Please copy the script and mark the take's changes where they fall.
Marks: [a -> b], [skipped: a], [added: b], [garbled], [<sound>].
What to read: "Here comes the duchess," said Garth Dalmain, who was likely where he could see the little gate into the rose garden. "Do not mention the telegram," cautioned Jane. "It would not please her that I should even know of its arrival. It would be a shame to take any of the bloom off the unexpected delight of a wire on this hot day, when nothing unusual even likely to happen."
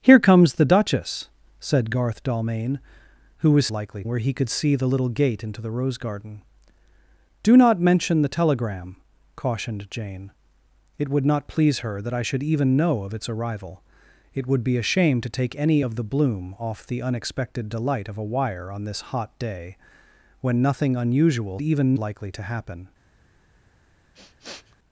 "Here comes the duchess," said Garth Dalmain, who was likely where he could see the little gate into the rose garden. "Do not mention the telegram," cautioned Jane. "It would not please her that I should even know of its arrival. It would be a shame to take any of the bloom off the unexpected delight of a wire on this hot day, when nothing unusual even likely to happen." [sniff]